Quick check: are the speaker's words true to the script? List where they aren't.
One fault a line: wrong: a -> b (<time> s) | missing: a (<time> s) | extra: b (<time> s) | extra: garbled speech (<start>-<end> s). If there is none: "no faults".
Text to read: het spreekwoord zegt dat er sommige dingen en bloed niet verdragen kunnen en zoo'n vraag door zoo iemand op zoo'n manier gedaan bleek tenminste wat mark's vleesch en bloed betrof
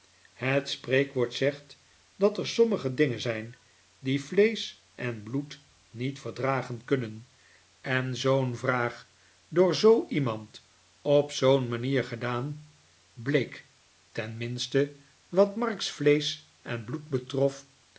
extra: zijn die vleesch (3.2 s)